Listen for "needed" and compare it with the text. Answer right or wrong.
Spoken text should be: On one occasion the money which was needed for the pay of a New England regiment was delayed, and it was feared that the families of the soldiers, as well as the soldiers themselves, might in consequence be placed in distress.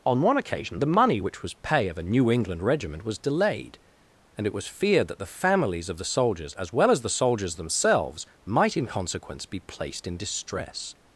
wrong